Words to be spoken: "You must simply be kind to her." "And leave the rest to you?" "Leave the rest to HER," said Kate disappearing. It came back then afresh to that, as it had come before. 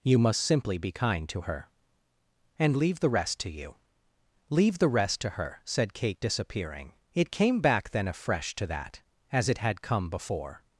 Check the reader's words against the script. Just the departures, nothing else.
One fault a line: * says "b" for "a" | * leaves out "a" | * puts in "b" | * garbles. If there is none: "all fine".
all fine